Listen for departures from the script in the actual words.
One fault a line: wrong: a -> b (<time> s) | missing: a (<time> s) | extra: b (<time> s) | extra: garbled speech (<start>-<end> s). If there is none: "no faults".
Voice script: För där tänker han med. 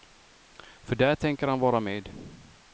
extra: vara (1.6 s)